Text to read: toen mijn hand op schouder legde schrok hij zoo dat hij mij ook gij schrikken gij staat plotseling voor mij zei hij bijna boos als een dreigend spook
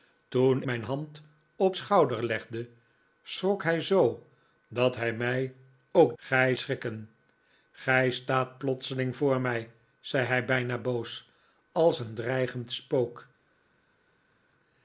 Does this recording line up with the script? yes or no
yes